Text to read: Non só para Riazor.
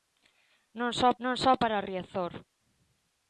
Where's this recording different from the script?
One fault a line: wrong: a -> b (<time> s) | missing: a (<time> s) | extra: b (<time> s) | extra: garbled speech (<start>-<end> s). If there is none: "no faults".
extra: non só (1.2 s)